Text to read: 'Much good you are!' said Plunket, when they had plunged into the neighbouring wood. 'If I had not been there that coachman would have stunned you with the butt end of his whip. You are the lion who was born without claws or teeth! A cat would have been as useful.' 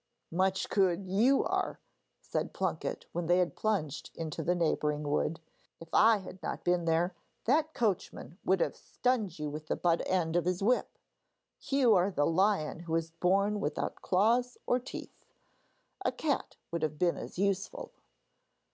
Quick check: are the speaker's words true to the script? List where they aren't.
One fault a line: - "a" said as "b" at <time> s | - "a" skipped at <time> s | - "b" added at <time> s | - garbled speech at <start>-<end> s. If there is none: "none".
none